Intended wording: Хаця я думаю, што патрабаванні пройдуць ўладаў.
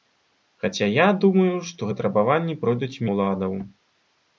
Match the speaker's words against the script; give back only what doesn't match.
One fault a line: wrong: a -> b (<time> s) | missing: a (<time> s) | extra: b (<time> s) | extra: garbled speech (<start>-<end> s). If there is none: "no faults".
no faults